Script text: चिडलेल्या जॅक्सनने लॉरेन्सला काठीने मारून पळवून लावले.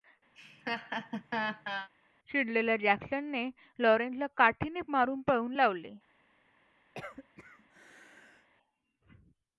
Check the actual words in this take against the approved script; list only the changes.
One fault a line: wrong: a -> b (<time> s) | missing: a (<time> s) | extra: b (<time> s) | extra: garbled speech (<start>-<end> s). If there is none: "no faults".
no faults